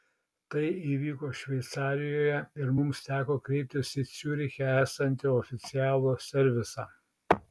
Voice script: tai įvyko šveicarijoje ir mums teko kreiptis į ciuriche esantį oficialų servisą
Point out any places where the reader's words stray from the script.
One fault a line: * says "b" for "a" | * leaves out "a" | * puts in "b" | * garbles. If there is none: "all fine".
all fine